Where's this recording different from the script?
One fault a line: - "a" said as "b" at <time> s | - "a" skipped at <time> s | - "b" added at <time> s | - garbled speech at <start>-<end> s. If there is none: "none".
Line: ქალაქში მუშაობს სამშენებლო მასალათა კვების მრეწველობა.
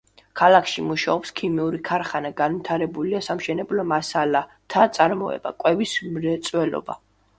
- "ქიმიური ქარხანა განვითარებულია" added at 1.4 s
- "წარმოება" added at 5.0 s